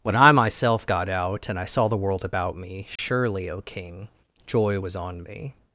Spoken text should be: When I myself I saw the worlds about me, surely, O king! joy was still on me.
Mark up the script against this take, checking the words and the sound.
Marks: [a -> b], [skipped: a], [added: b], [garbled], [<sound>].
When I myself [added: got out and] I saw the [worlds -> world] about me, surely, [dropout] O king! joy was [skipped: still] on me.